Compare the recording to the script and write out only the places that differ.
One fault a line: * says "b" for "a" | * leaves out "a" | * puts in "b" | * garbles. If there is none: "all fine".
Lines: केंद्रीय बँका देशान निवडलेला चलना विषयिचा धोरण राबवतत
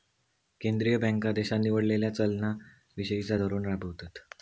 all fine